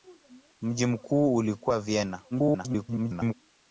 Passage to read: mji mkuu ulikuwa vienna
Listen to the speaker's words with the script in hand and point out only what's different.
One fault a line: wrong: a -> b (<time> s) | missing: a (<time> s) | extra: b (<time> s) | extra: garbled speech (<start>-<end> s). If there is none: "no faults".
extra: garbled speech (2.3-3.3 s)